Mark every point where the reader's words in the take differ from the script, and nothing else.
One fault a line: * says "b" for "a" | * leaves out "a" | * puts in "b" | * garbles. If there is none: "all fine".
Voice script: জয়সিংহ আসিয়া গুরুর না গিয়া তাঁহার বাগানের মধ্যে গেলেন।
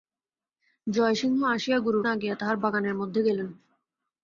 all fine